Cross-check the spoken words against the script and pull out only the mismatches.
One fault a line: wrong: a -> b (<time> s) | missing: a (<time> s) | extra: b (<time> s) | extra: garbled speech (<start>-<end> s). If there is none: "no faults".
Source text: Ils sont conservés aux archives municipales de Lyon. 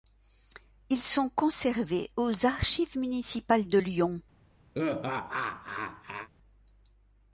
no faults